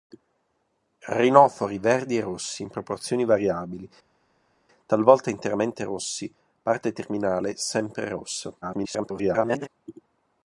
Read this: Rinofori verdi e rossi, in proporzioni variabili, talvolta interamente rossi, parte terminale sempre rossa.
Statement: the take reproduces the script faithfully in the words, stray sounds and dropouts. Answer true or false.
false